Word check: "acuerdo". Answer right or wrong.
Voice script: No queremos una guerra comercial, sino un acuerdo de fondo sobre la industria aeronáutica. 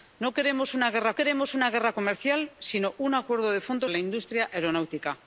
right